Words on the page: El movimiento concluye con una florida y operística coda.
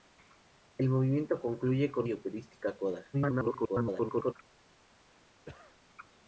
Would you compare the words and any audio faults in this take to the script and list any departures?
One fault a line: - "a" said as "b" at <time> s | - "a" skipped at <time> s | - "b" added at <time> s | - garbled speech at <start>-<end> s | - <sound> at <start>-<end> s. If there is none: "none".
- "una florida" skipped at 2.1 s
- garbled speech at 3.1-4.3 s
- cough at 5.4-5.8 s